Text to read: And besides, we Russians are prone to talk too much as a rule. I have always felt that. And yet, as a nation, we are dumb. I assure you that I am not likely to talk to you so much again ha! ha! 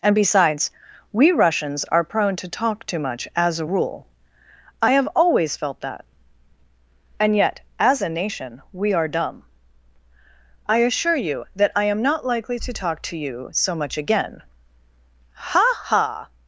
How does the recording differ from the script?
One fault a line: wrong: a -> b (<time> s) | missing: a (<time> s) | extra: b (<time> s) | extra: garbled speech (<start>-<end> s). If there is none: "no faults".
no faults